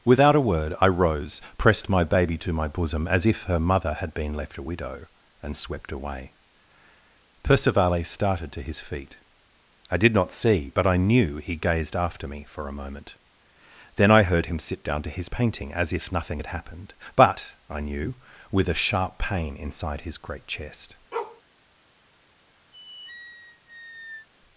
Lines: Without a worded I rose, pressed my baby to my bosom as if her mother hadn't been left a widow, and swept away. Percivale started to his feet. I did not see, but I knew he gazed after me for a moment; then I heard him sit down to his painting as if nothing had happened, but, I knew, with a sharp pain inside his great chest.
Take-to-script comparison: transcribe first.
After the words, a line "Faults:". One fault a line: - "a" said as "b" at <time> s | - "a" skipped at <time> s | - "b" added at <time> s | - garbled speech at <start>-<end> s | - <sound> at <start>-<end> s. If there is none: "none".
Without a word I rose, pressed my baby to my bosom as if her mother had been left a widow, and swept away. Percivale started to his feet. I did not see, but I knew he gazed after me for a moment; then I heard him sit down to his painting as if nothing had happened, but, I knew, with a sharp pain inside his great chest.
Faults:
- "worded" said as "word" at 0.4 s
- "hadn't" said as "had" at 3.9 s
- bark at 21.1-21.4 s
- squeak at 22.7-24.3 s